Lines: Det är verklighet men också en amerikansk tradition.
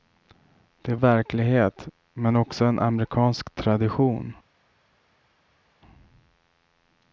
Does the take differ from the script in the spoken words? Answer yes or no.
no